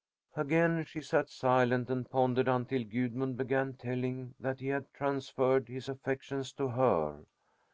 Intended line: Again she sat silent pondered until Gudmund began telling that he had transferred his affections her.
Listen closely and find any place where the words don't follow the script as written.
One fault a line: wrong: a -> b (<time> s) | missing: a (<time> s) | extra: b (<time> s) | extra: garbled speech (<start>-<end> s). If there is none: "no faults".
extra: and (1.9 s)
extra: to (6.5 s)